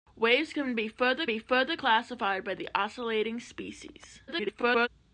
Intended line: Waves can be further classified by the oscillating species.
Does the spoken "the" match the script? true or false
true